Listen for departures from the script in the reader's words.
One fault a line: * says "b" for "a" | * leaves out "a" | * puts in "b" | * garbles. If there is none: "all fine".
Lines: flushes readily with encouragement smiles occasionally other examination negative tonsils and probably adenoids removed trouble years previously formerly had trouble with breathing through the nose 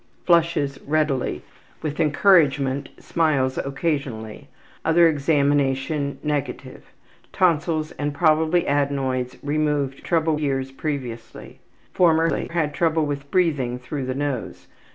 all fine